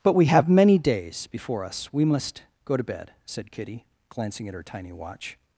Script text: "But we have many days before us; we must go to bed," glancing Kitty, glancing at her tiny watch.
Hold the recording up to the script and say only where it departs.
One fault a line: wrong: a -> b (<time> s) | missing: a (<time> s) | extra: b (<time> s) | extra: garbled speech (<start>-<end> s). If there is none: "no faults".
wrong: glancing -> said (3.2 s)